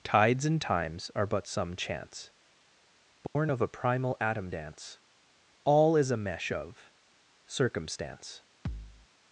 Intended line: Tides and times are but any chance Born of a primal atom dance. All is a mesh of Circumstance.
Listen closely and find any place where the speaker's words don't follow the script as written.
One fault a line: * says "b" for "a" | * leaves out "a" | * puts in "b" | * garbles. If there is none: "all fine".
* says "some" for "any"